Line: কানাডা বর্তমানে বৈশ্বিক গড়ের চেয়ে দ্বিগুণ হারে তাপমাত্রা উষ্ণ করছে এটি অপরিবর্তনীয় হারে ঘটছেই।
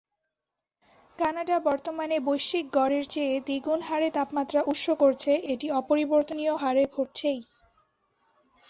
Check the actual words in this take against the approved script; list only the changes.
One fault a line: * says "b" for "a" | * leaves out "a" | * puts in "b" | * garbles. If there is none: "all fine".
all fine